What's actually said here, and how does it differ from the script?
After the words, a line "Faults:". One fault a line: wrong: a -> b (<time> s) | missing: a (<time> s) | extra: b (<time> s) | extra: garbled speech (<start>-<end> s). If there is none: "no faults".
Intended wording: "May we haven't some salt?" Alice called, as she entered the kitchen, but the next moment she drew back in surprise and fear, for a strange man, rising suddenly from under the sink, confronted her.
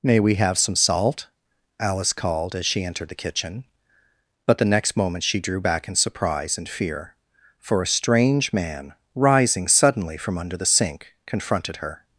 "May we have some salt?" Alice called, as she entered the kitchen, but the next moment she drew back in surprise and fear, for a strange man, rising suddenly from under the sink, confronted her.
Faults:
wrong: haven't -> have (0.3 s)